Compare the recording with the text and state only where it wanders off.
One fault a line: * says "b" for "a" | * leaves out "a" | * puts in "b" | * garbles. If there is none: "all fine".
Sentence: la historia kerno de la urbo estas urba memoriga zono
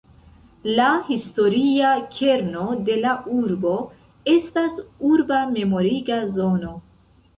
all fine